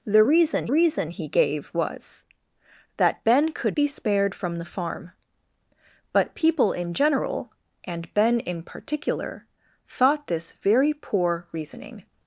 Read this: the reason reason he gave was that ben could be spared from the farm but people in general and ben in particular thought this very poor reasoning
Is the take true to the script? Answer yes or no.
yes